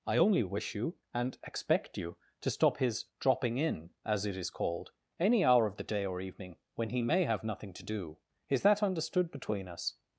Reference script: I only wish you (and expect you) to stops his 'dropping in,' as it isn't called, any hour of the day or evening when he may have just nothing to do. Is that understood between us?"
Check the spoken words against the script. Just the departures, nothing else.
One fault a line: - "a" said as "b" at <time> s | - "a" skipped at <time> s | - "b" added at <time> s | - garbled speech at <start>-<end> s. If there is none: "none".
- "stops" said as "stop" at 2.5 s
- "isn't" said as "is" at 4.4 s
- "just" skipped at 7.4 s